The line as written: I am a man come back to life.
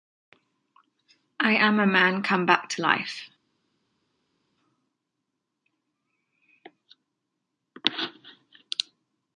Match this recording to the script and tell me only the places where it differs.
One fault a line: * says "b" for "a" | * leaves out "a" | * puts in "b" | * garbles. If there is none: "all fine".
all fine